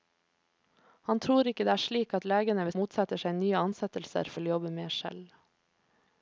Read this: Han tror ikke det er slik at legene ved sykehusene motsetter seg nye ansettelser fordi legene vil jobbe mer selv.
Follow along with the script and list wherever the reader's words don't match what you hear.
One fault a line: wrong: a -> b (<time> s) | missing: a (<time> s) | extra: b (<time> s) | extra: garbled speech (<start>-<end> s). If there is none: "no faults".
missing: sykehusene (2.8 s)
missing: fordi legene (4.3 s)